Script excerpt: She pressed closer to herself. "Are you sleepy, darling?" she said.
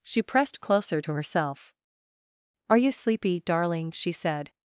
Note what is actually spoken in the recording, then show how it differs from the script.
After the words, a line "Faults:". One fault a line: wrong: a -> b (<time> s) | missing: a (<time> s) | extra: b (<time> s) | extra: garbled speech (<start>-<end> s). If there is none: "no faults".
She pressed closer to herself. "Are you sleepy, darling?" she said.
Faults:
no faults